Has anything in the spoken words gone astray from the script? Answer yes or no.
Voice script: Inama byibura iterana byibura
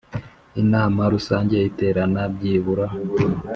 yes